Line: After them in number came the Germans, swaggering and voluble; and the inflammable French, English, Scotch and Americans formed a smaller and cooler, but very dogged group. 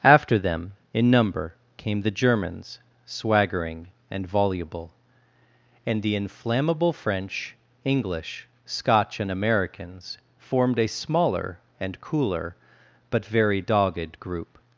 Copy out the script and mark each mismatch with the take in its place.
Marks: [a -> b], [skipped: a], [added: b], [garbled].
After them in number came the Germans, swaggering and voluble; and the inflammable French, English, Scotch and Americans formed a smaller and cooler, but very dogged group.